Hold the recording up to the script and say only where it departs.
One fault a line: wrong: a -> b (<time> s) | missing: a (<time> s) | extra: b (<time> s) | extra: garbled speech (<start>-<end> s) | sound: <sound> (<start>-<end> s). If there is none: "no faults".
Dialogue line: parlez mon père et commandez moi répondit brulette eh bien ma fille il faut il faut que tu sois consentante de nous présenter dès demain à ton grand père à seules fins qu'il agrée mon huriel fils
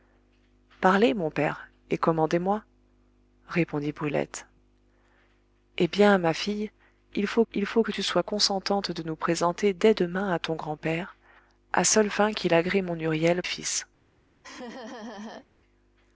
sound: laugh (14.4-15.5 s)